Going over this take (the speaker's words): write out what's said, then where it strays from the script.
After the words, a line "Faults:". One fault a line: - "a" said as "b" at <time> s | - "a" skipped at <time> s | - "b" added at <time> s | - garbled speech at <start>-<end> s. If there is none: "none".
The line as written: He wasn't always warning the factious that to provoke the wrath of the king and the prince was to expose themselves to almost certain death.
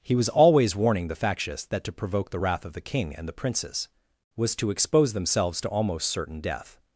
He was always warning the factious that to provoke the wrath of the king and the princes was to expose themselves to almost certain death.
Faults:
- "wasn't" said as "was" at 0.1 s
- "prince" said as "princes" at 3.3 s